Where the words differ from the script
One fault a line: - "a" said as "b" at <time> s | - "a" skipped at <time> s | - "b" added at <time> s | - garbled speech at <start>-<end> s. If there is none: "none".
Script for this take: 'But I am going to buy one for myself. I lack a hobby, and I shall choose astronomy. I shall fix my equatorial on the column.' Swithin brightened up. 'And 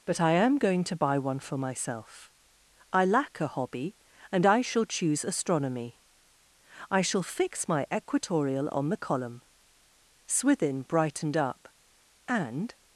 none